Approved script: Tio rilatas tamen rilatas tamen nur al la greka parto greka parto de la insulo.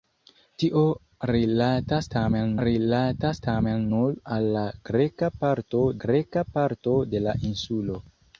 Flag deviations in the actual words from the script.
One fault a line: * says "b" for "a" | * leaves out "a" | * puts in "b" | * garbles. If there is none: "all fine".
all fine